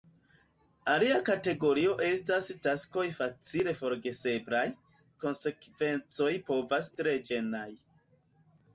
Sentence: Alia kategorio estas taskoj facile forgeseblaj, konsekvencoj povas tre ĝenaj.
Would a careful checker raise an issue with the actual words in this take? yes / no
no